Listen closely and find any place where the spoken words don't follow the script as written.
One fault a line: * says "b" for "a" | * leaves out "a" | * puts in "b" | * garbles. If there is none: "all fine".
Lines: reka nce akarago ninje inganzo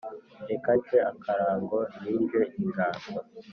all fine